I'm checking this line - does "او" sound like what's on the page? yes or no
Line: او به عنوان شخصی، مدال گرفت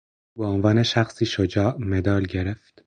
yes